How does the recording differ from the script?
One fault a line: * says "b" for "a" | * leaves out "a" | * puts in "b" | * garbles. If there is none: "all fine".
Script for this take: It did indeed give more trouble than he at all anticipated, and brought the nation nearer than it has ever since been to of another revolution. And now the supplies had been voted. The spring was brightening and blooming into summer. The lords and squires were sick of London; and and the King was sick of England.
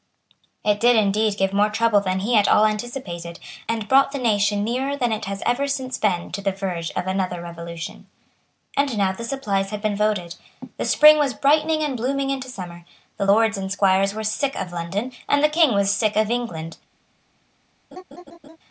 * puts in "the verge"
* leaves out "and"